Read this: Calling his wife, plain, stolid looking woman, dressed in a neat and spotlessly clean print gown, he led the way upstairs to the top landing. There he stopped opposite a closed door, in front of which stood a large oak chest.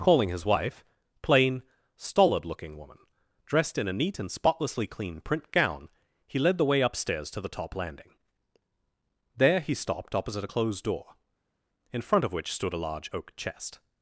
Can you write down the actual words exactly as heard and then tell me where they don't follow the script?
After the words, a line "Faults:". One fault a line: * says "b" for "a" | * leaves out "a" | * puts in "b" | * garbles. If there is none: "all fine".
Calling his wife, plain, stolid looking woman, dressed in a neat and spotlessly clean print gown, he led the way upstairs to the top landing. There he stopped opposite a closed door, in front of which stood a large oak chest.
Faults:
all fine